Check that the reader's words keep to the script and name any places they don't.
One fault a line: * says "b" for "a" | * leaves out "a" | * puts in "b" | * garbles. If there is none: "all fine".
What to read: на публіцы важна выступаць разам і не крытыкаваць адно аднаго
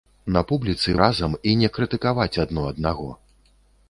* leaves out "важна выступаць"